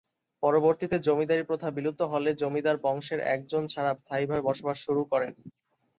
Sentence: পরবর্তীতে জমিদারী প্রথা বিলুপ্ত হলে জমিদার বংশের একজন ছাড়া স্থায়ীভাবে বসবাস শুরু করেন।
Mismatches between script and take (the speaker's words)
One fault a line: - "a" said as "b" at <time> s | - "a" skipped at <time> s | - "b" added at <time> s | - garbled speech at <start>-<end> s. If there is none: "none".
none